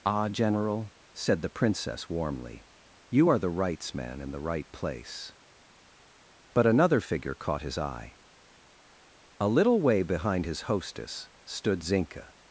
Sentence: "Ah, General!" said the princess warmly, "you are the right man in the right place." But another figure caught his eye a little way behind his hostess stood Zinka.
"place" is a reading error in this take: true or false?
false